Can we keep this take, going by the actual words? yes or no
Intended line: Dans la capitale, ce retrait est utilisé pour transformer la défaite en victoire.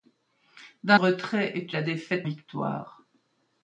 no